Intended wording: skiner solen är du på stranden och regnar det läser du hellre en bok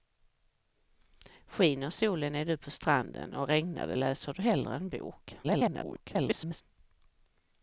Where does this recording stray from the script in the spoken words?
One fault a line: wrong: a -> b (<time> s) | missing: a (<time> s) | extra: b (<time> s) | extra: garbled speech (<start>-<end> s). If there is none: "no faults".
extra: garbled speech (5.4-6.6 s)